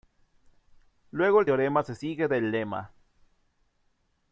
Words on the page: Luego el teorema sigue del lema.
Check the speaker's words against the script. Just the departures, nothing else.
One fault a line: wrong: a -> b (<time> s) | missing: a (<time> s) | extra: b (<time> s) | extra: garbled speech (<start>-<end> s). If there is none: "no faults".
extra: se (1.8 s)